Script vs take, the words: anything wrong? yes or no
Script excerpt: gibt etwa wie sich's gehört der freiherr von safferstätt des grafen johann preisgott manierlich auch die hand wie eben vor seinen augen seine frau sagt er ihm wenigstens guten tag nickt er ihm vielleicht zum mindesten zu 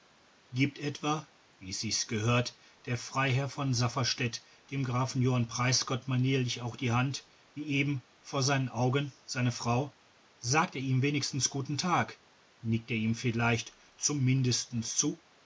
yes